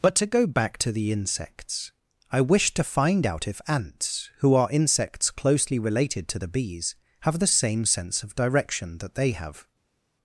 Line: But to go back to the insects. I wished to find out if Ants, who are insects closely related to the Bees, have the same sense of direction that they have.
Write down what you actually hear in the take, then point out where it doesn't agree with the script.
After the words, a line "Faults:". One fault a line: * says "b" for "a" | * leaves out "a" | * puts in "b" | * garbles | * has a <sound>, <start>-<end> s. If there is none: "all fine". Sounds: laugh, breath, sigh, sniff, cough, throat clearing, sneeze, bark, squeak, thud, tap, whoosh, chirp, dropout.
But to go back to the insects. I wished to find out if Ants, who are insects closely related to the Bees, have the same sense of direction that they have.
Faults:
all fine